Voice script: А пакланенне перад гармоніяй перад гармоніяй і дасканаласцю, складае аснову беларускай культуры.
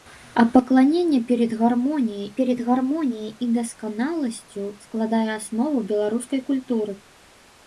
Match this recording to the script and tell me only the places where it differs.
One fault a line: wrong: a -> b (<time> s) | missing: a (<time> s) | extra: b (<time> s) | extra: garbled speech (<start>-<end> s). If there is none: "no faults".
no faults